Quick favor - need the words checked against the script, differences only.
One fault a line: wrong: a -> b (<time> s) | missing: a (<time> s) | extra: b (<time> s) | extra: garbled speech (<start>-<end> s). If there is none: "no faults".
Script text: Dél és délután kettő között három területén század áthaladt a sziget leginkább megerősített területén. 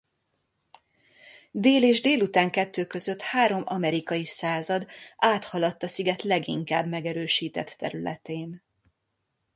wrong: területén -> amerikai (3.6 s)